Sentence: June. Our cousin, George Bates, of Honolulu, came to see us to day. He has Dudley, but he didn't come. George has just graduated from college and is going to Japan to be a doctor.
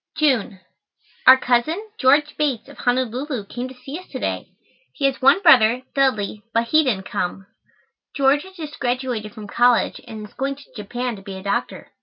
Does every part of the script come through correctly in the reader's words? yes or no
no